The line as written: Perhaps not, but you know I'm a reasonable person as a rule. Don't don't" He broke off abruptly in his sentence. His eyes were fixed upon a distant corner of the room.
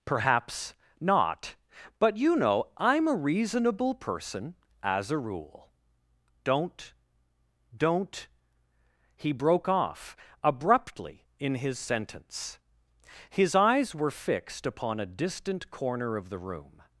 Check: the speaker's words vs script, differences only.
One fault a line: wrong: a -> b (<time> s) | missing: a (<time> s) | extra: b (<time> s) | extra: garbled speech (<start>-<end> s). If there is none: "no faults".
no faults